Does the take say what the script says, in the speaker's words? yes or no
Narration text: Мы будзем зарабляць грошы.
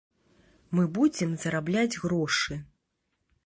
yes